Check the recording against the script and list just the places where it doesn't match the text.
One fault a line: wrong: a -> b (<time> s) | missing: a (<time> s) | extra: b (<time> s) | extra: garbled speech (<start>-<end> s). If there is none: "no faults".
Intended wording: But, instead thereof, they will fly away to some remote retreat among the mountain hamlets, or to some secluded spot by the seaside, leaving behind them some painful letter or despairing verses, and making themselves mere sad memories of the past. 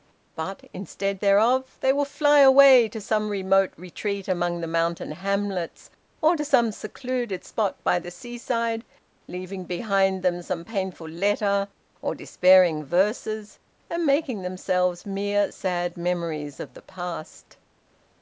no faults